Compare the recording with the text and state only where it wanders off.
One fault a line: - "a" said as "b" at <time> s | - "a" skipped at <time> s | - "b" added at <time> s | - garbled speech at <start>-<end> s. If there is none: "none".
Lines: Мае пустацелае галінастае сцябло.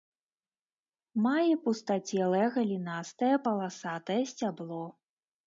- "паласатае" added at 3.5 s